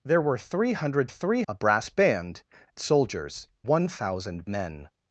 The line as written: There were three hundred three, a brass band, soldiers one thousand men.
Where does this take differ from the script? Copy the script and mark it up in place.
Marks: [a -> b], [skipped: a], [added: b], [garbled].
There were three hundred three, a brass band, soldiers one thousand men.